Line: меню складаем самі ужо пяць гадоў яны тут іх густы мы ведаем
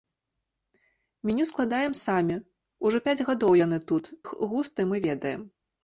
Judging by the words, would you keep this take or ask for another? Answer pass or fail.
pass